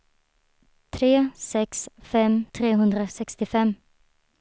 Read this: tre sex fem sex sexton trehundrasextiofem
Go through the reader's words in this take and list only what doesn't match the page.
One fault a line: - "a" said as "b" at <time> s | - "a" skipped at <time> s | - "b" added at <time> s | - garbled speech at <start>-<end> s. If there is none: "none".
- "sex sexton" skipped at 2.5 s